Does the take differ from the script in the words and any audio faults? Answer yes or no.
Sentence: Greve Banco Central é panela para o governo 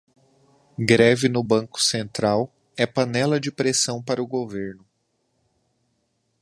yes